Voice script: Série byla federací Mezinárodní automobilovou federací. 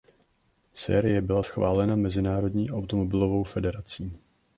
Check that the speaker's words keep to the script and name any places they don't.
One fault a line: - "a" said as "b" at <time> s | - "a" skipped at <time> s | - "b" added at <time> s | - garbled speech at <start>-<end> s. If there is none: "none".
- "federací" said as "schválena" at 1.4 s